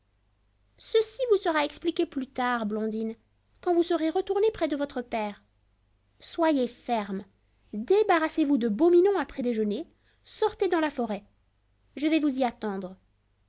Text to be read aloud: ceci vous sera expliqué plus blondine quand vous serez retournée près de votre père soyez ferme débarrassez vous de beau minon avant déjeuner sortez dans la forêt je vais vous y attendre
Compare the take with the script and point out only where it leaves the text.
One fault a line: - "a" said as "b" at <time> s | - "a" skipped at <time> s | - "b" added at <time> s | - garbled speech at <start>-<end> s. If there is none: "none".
- "tard" added at 2.2 s
- "avant" said as "après" at 9.2 s